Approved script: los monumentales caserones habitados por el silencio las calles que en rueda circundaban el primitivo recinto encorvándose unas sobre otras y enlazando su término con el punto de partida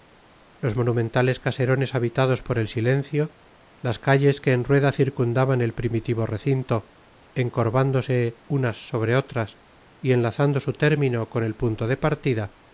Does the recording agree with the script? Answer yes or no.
yes